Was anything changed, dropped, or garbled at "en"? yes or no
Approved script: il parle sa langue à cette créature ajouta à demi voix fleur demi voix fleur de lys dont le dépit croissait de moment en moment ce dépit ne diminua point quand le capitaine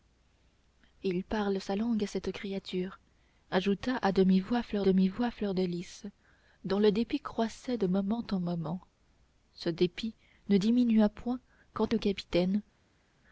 no